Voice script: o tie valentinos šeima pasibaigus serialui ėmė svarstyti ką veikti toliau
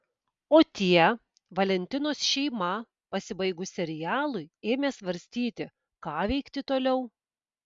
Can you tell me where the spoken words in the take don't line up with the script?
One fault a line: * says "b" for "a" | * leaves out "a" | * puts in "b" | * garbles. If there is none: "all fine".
all fine